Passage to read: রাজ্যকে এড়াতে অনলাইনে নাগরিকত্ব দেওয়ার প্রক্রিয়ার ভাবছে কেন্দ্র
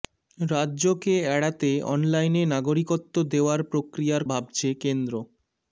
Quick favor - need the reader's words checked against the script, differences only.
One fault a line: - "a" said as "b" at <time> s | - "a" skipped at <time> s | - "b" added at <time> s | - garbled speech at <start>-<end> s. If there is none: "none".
none